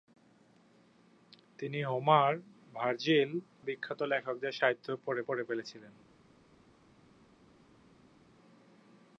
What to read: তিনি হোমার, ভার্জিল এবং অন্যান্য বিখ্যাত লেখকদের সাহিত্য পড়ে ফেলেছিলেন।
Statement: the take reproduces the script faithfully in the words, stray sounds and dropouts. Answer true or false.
false